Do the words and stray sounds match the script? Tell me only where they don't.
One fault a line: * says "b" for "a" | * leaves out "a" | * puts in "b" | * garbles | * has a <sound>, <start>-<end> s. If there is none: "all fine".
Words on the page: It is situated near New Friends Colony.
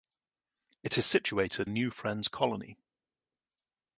* leaves out "near"